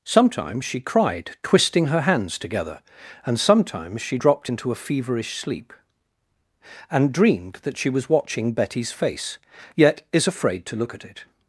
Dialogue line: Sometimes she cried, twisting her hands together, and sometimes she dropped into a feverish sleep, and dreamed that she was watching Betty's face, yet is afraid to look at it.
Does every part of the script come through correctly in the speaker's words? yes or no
yes